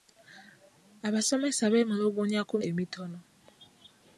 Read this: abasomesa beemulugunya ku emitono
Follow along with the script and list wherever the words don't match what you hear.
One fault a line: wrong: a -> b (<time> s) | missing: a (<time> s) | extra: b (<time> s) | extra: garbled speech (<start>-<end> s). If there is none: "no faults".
no faults